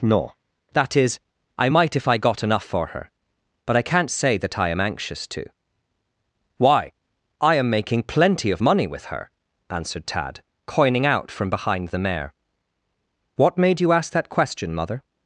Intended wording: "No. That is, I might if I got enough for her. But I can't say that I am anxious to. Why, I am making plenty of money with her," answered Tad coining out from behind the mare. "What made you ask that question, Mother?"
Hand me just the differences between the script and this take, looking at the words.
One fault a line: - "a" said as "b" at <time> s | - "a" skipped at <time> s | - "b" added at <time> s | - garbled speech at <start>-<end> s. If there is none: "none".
none